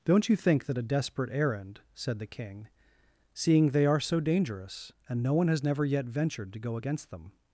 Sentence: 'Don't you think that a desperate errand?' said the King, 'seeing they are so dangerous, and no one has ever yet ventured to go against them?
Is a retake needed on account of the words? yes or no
yes